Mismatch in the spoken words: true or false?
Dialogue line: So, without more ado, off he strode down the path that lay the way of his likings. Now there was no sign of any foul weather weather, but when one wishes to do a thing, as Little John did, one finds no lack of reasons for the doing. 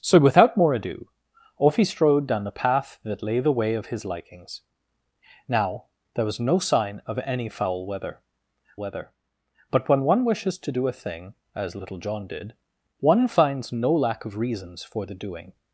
false